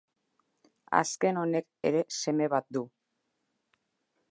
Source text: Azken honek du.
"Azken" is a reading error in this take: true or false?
false